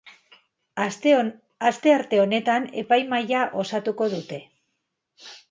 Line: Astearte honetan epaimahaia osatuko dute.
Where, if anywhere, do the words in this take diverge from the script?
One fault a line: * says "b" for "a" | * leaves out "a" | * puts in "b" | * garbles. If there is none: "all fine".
all fine